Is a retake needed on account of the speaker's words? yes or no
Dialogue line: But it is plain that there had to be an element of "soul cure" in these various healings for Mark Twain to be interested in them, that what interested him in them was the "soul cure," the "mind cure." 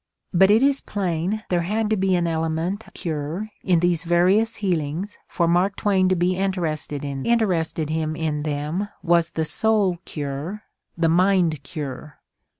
yes